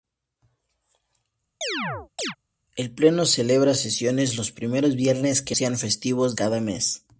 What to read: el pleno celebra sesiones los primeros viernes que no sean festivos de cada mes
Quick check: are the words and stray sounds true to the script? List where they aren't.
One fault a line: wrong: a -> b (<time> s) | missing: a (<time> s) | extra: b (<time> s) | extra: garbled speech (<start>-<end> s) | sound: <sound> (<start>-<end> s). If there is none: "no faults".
sound: chirp (1.6-2.4 s)
missing: no (5.6 s)
missing: de (6.4 s)